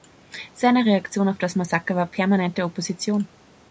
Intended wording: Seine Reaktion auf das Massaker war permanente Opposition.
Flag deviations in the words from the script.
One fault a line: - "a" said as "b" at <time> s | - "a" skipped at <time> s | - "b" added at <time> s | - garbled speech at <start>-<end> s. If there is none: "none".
none